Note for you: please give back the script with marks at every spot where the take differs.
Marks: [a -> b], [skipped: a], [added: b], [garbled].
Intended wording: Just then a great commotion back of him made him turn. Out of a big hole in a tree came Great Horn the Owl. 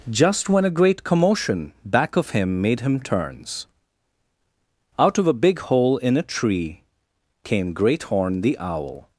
Just [then -> when] a great commotion back of him made him [turn. -> turns] Out of a big hole in a tree came Great Horn the Owl.